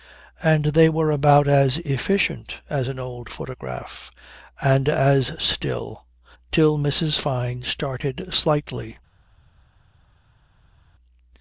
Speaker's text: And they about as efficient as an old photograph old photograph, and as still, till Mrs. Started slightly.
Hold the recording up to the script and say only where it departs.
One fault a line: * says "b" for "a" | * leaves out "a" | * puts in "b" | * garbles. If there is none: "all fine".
* puts in "were"
* leaves out "old photograph"
* puts in "Fyne"